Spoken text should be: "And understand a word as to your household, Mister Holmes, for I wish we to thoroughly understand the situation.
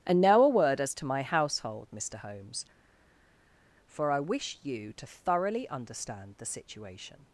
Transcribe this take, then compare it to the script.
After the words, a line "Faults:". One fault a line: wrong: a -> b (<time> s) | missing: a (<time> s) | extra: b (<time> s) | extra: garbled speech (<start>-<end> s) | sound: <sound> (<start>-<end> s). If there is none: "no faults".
"And now a word as to my household, Mister Holmes, for I wish you to thoroughly understand the situation.
Faults:
wrong: understand -> now (0.2 s)
wrong: your -> my (1.1 s)
wrong: we -> you (4.6 s)